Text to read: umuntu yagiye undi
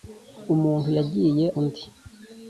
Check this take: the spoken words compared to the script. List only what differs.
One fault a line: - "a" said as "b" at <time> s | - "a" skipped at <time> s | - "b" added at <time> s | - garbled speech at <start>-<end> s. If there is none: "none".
none